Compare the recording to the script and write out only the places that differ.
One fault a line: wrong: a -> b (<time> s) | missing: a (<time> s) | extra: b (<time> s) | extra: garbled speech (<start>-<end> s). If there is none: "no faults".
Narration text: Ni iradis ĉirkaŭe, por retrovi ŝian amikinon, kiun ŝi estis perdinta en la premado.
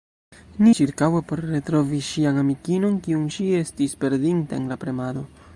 missing: iradis (0.7 s)